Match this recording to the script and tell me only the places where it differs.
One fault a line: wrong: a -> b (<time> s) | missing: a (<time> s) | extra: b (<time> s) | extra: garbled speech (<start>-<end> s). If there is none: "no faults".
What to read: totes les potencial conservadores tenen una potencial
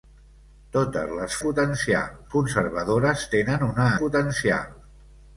no faults